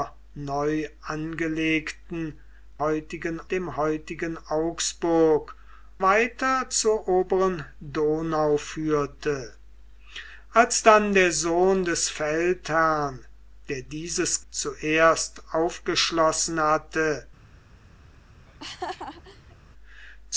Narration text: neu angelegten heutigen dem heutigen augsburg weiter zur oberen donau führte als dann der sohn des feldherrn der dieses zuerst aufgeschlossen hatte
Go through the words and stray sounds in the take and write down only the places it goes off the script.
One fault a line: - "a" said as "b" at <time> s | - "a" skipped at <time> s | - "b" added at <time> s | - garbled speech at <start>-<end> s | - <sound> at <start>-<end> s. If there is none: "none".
- laugh at 18.5-19.6 s